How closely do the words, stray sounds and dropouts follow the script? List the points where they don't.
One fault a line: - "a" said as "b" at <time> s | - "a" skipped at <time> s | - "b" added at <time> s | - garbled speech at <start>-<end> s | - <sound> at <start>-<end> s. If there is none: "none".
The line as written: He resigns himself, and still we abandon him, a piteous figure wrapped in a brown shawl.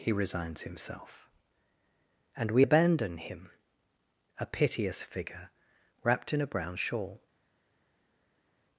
- "still" skipped at 2.5 s